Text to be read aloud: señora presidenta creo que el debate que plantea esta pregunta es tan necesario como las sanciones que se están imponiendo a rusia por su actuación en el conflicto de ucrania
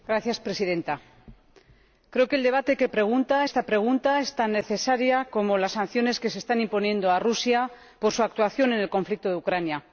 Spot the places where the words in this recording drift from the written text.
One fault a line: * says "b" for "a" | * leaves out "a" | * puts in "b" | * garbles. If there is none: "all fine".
* says "pregunta" for "plantea"